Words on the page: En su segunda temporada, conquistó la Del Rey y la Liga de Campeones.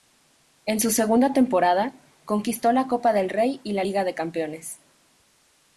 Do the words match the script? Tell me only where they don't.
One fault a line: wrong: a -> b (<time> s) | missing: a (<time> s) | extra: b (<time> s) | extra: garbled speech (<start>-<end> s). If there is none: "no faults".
extra: Copa (2.9 s)